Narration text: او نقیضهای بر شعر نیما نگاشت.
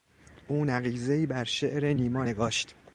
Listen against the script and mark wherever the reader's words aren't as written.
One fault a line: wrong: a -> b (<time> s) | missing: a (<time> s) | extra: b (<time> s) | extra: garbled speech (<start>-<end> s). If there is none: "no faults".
no faults